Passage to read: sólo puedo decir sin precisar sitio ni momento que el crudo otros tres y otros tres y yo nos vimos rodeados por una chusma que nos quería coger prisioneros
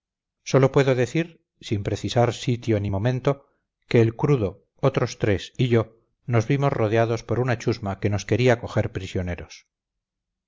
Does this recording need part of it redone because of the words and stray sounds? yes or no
yes